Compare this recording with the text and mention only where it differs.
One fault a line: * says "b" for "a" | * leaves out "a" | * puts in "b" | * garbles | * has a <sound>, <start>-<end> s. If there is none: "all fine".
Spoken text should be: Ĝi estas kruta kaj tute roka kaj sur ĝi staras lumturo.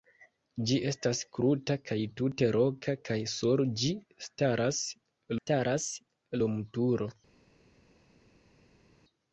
* puts in "staras"